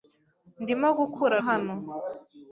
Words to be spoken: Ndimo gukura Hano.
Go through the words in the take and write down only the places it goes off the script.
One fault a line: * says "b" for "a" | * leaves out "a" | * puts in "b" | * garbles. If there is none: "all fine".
all fine